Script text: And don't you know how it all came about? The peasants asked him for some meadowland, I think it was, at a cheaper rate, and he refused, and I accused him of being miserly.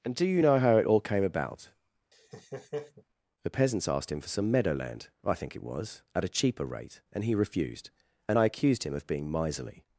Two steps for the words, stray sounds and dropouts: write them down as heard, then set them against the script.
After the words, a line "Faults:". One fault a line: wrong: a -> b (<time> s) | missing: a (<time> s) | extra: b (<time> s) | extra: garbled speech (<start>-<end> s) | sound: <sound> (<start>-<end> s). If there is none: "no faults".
And do you know how it all came about? The peasants asked him for some meadowland, I think it was, at a cheaper rate, and he refused, and I accused him of being miserly.
Faults:
wrong: don't -> do (0.1 s)
sound: laugh (2.1-3.0 s)